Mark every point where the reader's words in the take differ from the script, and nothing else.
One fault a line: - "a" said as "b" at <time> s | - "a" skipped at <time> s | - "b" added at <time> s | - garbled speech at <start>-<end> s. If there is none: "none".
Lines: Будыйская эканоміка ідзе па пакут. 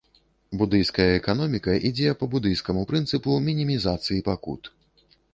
- "будыйскаму прынцыпу мінімізацыі" added at 2.3 s